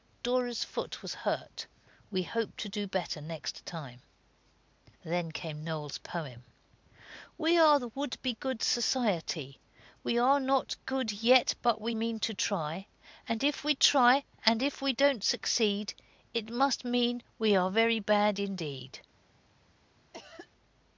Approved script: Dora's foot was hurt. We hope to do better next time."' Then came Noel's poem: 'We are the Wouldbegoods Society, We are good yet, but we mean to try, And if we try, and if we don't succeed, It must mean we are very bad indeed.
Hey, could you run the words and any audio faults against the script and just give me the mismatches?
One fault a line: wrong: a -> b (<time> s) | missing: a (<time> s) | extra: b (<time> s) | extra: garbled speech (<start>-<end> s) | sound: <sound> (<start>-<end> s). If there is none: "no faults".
extra: not (10.4 s)
sound: cough (20.1-20.5 s)